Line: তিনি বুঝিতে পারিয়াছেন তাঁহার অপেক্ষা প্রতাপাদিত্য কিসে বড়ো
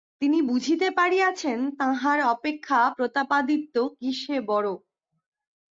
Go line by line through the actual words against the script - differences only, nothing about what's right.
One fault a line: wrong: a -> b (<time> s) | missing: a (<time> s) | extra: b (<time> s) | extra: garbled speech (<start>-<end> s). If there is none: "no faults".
no faults